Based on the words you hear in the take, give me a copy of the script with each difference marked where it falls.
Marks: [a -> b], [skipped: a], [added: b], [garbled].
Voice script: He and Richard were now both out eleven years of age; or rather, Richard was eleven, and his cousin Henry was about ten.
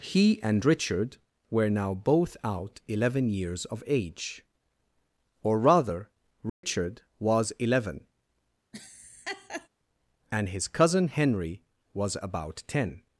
He and Richard were now both out eleven years of age; or rather, Richard was eleven, and his cousin Henry was about ten.